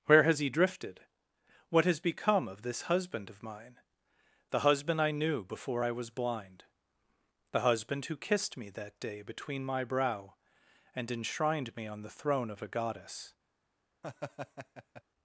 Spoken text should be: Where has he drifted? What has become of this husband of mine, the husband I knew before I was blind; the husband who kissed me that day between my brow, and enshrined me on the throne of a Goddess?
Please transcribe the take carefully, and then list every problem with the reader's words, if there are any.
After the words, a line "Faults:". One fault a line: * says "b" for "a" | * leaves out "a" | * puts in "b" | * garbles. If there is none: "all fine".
Where has he drifted? What has become of this husband of mine, the husband I knew before I was blind; the husband who kissed me that day between my brow, and enshrined me on the throne of a Goddess?
Faults:
all fine